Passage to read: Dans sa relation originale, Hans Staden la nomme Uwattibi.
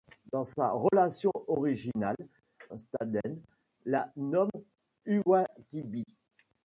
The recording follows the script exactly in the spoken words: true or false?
false